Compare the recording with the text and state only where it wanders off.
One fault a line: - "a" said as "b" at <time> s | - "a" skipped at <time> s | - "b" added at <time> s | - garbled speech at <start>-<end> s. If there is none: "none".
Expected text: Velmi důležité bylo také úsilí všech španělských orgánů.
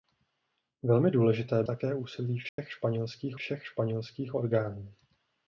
- "bylo" skipped at 1.6 s
- "všech španělských" added at 3.3 s